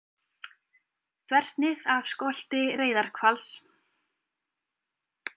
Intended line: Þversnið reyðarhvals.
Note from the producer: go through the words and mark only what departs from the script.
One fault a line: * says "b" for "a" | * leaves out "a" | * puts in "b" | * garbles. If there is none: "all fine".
* puts in "af skolti"